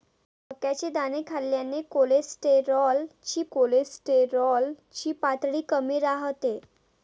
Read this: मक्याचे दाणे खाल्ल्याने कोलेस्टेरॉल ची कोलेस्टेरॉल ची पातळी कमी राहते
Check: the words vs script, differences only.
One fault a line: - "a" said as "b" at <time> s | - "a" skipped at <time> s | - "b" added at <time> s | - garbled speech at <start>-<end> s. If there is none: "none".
none